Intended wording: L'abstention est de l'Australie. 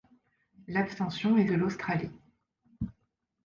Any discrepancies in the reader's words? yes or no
no